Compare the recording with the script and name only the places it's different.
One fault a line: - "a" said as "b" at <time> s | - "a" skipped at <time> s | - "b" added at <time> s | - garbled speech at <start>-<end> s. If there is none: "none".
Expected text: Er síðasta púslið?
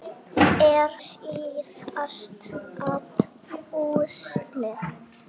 none